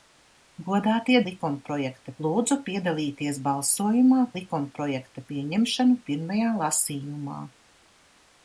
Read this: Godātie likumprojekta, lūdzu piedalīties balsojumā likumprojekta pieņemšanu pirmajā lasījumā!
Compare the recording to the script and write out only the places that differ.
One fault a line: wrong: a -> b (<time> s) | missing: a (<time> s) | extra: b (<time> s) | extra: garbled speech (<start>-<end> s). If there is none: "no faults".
no faults